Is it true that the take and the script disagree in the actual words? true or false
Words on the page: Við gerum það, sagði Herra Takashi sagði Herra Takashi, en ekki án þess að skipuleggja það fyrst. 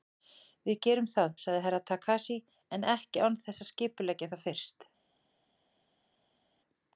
true